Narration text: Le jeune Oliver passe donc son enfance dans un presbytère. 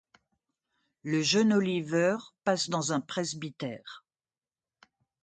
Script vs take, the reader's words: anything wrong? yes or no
yes